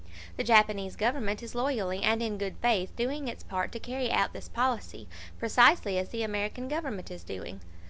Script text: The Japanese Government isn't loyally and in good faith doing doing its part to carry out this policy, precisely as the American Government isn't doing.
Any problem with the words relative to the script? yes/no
yes